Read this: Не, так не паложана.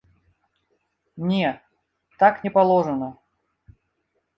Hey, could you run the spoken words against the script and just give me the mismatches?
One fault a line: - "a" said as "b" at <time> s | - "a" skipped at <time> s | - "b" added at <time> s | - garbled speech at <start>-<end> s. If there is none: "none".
none